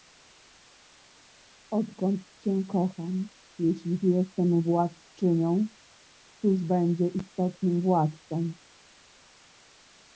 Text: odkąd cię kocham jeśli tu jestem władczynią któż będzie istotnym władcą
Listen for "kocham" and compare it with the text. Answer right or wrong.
right